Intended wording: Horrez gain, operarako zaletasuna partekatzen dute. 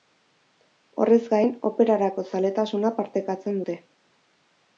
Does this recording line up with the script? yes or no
yes